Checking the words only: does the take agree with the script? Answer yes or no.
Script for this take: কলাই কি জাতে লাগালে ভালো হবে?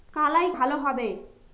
no